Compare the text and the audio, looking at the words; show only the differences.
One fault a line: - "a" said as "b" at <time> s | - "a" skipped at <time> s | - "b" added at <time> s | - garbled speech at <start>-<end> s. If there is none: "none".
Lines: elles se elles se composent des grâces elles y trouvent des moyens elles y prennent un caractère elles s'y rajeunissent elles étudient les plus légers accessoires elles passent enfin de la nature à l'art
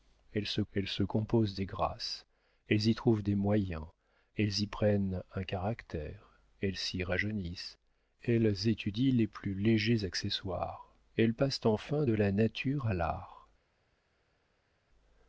none